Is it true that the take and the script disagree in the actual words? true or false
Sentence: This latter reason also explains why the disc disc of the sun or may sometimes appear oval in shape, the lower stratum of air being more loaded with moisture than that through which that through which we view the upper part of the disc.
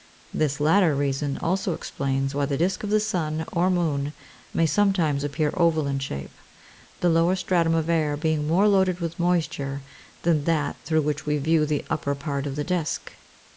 true